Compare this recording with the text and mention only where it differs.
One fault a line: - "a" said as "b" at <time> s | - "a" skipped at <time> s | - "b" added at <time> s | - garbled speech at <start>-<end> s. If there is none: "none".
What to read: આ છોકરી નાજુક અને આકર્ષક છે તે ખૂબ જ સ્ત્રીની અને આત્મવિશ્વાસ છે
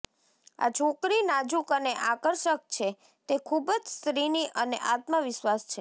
none